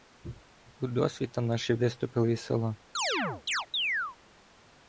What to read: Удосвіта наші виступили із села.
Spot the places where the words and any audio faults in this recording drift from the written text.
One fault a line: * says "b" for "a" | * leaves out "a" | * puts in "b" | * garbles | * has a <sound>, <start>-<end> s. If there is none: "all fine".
* has a chirp, 2.9-4.2 s